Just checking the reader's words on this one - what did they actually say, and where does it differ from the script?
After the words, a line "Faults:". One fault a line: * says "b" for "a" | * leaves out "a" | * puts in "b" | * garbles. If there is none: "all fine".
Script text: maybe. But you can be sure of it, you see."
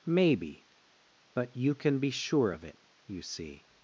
maybe. But you can be sure of it, you see."
Faults:
all fine